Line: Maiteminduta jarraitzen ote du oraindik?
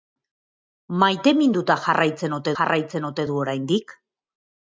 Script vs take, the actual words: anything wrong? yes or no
yes